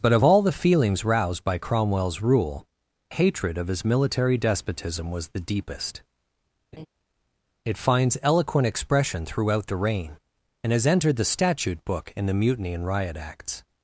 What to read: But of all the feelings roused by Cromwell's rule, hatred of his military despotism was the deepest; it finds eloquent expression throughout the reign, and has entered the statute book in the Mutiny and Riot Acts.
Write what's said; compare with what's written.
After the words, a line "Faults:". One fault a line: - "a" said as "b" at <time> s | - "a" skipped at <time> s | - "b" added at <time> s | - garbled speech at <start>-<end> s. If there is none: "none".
But of all the feelings roused by Cromwell's rule, hatred of his military despotism was the deepest; it finds eloquent expression throughout the reign, and has entered the statute book in the Mutiny and Riot Acts.
Faults:
none